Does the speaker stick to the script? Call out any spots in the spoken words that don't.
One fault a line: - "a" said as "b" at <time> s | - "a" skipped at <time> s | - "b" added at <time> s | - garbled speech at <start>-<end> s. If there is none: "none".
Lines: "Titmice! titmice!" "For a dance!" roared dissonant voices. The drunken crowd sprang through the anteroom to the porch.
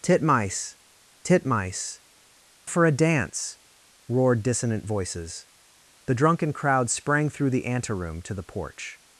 none